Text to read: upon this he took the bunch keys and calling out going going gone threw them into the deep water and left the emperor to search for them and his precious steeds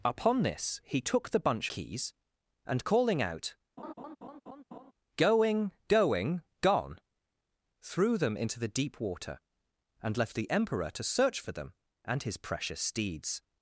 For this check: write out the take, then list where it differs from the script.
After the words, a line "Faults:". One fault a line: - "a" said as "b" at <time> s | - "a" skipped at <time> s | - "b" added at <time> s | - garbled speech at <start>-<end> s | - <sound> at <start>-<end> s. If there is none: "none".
upon this he took the bunch keys and calling out going going gone threw them into the deep water and left the emperor to search for them and his precious steeds
Faults:
- laugh at 3.8-4.9 s